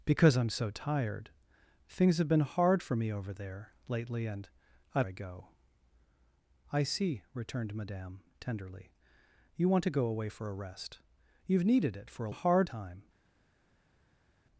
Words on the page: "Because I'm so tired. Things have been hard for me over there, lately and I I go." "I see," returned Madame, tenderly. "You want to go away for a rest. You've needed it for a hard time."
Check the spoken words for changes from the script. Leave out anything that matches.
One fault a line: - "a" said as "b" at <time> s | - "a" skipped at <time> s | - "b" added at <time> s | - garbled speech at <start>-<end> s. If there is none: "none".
none